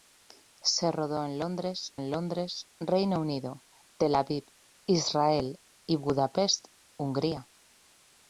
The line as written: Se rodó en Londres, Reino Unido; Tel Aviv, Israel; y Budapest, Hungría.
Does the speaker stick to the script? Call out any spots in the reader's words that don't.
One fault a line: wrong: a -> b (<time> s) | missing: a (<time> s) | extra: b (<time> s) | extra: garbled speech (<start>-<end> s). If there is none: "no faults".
extra: en Londres (1.9 s)